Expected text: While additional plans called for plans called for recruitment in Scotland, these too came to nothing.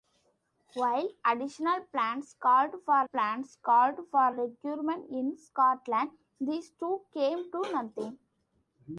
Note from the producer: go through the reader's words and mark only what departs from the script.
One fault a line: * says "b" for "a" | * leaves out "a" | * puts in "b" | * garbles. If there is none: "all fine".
all fine